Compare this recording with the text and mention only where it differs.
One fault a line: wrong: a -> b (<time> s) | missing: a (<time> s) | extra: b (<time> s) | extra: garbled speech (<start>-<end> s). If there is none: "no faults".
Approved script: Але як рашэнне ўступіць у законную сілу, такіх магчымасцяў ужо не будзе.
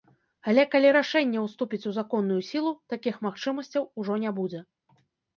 wrong: як -> калі (0.8 s)